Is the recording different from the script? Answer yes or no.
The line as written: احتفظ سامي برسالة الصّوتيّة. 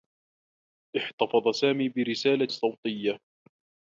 no